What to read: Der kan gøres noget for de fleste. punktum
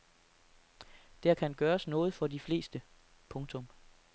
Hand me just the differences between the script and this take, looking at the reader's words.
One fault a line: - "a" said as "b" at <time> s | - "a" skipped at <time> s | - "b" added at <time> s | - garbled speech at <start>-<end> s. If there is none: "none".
none